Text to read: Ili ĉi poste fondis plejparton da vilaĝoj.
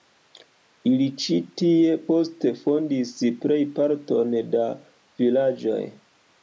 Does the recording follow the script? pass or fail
fail